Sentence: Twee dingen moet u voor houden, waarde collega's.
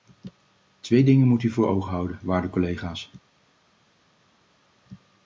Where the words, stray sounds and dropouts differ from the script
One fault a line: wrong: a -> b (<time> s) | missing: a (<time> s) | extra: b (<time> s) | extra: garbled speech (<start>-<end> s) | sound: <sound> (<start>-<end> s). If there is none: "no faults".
extra: ogen (1.7 s)